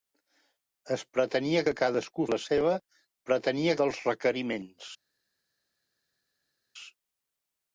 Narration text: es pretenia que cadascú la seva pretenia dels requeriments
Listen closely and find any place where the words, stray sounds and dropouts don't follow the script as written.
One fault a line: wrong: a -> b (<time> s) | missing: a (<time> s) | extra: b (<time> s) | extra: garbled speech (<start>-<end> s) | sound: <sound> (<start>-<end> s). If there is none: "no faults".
no faults